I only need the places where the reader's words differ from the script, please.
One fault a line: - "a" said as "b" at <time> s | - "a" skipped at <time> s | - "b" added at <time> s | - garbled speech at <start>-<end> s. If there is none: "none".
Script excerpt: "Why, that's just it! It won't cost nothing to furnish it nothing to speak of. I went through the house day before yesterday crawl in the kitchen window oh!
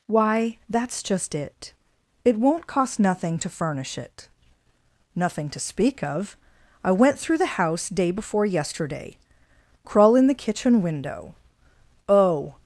none